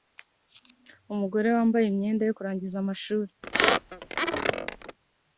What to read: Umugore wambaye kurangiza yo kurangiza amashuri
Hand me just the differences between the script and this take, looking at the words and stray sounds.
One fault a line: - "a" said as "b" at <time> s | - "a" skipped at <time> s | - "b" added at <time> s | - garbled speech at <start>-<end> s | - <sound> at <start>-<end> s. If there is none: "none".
- "kurangiza" said as "imyenda" at 1.9 s
- squeak at 3.4-5.0 s